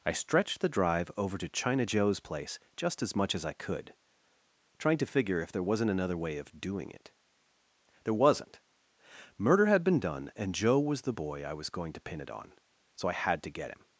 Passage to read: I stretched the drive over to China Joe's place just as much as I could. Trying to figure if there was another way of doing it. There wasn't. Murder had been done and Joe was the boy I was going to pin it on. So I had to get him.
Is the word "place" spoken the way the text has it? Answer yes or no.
yes